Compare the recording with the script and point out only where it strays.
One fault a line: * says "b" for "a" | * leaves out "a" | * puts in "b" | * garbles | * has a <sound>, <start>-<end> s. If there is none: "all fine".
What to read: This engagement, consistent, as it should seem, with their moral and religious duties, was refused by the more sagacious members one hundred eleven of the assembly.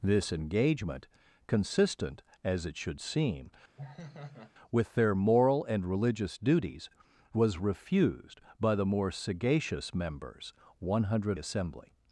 * has a laugh, 3.8-4.5 s
* leaves out "eleven of the"